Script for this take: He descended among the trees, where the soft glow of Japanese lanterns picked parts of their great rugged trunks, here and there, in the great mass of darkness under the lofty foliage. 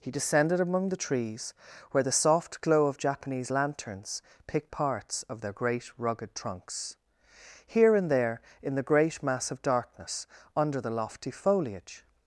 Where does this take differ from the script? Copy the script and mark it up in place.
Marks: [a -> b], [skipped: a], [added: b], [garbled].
He descended among the trees, where the soft glow of Japanese lanterns picked parts of their great rugged trunks, here and there, in the great mass of darkness under the lofty foliage.